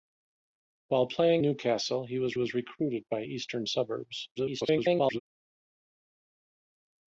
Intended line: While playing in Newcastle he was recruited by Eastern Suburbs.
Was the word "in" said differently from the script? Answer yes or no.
yes